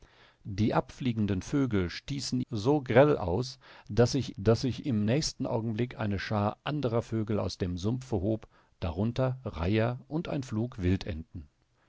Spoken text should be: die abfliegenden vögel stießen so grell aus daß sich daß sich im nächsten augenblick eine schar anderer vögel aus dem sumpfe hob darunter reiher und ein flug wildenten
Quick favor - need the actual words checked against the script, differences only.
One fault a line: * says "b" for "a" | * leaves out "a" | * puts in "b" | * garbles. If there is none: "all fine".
all fine